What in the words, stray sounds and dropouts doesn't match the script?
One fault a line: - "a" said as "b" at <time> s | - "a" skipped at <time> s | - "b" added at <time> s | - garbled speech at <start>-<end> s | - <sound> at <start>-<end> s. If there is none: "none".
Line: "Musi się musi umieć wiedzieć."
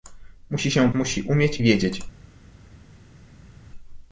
none